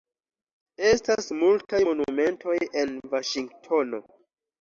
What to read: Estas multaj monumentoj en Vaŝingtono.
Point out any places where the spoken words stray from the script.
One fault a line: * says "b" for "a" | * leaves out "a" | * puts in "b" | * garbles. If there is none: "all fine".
all fine